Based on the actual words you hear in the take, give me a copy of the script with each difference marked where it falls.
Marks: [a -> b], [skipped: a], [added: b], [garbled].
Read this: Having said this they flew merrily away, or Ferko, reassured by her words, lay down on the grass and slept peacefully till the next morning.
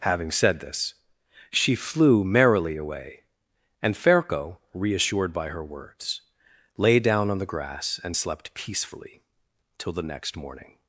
Having said this [they -> she] flew merrily away, [or -> and] Ferko, reassured by her words, lay down on the grass and slept peacefully till the next morning.